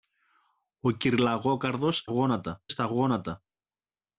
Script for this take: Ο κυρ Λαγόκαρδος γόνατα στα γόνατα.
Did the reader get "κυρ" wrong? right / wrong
right